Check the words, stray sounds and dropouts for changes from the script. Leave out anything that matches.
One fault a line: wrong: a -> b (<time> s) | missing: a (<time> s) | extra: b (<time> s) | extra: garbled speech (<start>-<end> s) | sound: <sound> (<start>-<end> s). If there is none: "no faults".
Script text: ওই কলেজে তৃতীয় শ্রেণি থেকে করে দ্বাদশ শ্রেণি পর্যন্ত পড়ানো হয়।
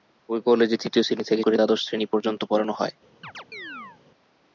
sound: chirp (3.2-4.0 s)